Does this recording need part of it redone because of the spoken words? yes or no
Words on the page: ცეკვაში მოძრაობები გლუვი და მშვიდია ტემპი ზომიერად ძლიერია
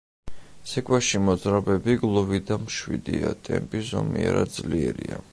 no